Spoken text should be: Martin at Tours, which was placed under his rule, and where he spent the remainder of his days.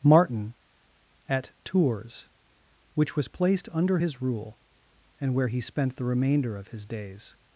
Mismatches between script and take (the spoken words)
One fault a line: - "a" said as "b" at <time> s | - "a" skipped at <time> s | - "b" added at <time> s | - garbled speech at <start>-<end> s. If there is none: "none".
none